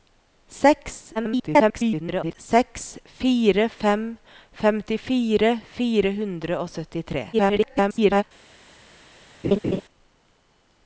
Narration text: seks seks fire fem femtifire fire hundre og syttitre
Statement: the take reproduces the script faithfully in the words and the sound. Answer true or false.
false